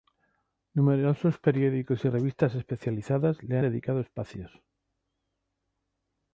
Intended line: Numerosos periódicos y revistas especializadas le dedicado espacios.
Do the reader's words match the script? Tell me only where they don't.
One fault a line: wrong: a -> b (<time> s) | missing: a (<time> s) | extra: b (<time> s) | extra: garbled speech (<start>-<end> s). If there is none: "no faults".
no faults